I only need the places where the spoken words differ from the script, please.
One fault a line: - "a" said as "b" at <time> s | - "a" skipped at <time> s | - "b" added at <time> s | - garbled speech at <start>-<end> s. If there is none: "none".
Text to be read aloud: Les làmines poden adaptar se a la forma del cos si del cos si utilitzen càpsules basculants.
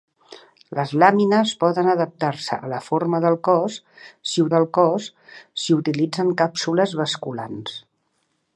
none